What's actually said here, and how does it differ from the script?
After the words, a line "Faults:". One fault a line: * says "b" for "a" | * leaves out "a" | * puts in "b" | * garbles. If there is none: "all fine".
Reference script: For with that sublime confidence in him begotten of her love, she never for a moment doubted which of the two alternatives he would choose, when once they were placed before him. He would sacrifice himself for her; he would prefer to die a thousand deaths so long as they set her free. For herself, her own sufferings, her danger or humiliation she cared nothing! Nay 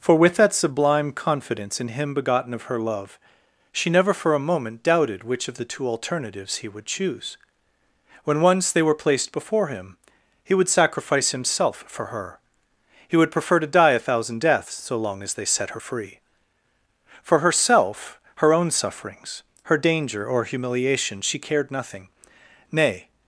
For with that sublime confidence in him begotten of her love, she never for a moment doubted which of the two alternatives he would choose, when once they were placed before him. He would sacrifice himself for her; he would prefer to die a thousand deaths so long as they set her free. For herself, her own sufferings, her danger or humiliation she cared nothing! Nay
Faults:
all fine